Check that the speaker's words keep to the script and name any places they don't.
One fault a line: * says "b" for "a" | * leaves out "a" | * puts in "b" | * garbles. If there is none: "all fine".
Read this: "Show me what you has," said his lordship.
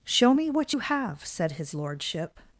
* says "have" for "has"